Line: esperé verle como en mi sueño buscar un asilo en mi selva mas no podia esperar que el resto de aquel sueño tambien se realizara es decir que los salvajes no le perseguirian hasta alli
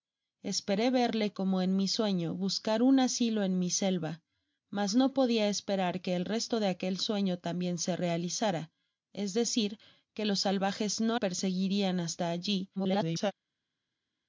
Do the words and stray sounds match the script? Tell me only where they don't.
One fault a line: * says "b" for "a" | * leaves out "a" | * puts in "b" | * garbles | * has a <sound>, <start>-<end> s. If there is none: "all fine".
* leaves out "le"
* garbles